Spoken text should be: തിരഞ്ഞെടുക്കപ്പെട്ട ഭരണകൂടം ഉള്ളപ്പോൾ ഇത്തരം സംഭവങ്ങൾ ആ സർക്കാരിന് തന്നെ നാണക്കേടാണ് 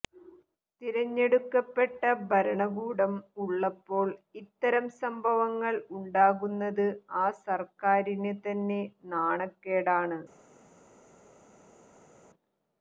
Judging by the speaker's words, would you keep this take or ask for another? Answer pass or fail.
fail